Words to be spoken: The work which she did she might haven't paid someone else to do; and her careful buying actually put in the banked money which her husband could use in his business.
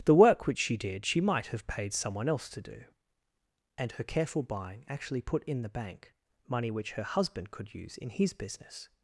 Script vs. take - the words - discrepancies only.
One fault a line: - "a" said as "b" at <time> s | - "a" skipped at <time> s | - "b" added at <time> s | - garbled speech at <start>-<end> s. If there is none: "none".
- "haven't" said as "have" at 1.5 s
- "banked" said as "bank" at 5.7 s